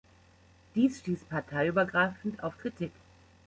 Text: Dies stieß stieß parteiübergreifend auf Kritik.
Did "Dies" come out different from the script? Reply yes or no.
no